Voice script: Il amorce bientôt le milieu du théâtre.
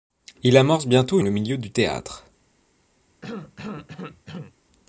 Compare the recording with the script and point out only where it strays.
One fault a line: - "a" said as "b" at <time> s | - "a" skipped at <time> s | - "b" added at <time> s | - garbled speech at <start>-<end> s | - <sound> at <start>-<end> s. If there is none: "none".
- cough at 3.2-4.6 s